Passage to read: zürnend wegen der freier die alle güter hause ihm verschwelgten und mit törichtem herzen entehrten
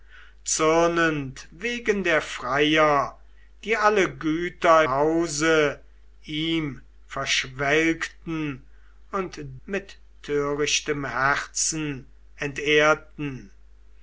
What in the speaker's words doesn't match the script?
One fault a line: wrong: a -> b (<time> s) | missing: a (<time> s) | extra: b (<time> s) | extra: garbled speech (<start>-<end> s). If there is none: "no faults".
no faults